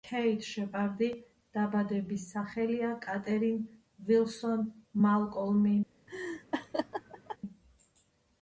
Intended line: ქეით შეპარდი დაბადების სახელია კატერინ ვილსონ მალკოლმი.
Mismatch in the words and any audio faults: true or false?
true